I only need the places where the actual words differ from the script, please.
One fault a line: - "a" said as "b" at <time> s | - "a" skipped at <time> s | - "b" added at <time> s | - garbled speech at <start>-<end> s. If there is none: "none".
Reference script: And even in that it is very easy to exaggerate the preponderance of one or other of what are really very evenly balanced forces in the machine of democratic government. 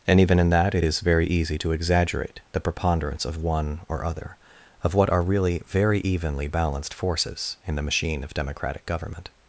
none